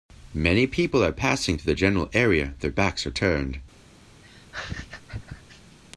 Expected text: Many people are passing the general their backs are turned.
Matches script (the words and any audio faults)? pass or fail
fail